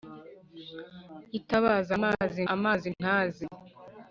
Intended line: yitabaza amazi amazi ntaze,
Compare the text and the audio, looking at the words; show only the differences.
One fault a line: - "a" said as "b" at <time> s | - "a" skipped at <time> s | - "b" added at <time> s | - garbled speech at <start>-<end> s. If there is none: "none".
none